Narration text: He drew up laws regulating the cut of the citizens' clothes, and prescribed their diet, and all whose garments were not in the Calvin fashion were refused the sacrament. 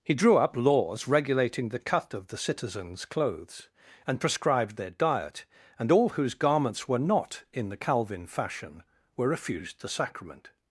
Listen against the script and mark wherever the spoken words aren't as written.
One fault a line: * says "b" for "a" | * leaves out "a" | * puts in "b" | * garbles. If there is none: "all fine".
all fine